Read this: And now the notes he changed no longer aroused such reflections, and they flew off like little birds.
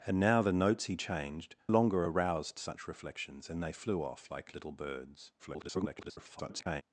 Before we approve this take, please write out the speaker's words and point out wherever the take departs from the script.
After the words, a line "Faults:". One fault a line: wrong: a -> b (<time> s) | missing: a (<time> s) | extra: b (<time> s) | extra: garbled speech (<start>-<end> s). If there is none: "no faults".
And now the notes he changed longer aroused such reflections, and they flew off like little birds. [garbled]
Faults:
missing: no (1.6 s)
extra: garbled speech (5.4-6.8 s)